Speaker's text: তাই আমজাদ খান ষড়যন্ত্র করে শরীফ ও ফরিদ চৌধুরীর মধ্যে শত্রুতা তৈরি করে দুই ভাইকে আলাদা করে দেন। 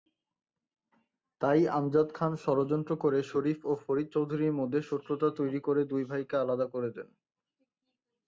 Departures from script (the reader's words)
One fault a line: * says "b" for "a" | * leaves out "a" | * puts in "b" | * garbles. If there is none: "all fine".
all fine